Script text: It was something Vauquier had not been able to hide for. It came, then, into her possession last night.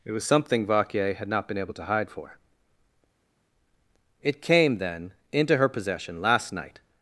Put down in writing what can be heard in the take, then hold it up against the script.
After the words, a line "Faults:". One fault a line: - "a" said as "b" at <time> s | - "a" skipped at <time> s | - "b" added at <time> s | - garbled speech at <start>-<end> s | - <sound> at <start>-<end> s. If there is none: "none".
It was something Vauquier had not been able to hide for. It came, then, into her possession last night.
Faults:
none